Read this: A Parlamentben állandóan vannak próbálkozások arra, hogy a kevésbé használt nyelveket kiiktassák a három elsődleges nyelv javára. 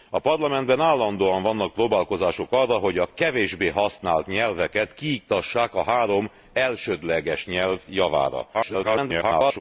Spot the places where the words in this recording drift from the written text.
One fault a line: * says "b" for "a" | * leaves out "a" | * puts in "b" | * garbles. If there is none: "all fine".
* garbles